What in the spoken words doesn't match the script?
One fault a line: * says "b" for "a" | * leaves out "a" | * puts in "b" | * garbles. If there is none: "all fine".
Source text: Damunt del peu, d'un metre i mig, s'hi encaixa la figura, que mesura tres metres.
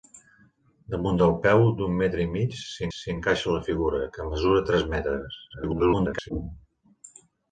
* puts in "s'hi"
* garbles